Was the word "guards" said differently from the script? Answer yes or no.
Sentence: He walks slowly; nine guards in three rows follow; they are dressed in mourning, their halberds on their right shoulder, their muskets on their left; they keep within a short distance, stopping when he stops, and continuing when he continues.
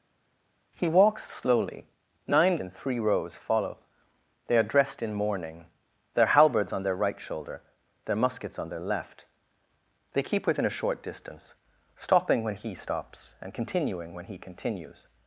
yes